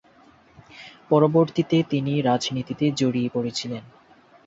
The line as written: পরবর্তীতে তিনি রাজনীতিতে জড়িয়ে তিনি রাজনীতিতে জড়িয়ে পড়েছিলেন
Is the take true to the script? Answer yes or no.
no